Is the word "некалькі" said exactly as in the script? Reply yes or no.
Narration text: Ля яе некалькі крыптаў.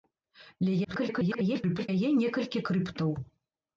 yes